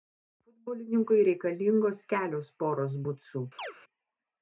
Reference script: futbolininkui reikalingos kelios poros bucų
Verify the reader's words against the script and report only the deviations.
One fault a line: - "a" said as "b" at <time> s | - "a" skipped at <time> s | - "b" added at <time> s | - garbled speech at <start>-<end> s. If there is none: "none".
none